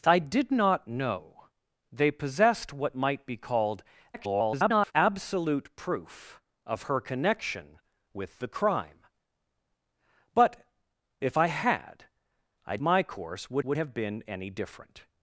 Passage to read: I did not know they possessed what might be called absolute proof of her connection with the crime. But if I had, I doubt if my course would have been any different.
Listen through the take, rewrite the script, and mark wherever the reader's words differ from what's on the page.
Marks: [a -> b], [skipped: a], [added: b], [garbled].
I did not know they possessed what might be called [garbled] absolute proof of her connection with the crime. But if I had, I [skipped: doubt if] my course would [added: would] have been any different.